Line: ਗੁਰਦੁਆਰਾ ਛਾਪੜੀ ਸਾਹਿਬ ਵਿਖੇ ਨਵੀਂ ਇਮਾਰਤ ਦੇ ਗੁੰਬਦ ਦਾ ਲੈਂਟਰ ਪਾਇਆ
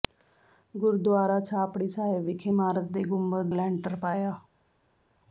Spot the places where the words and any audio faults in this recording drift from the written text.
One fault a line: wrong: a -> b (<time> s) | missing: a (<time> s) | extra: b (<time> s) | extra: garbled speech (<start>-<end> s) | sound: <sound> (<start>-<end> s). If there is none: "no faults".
missing: ਨਵੀਂ (2.5 s)
missing: ਦਾ (3.5 s)